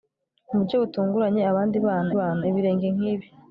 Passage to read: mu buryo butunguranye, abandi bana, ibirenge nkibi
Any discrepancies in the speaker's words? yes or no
yes